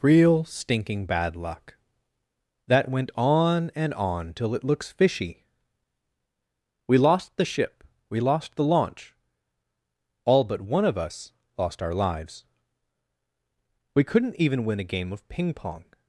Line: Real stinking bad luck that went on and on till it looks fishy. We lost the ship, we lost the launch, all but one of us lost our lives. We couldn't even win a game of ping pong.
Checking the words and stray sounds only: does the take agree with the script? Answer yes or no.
yes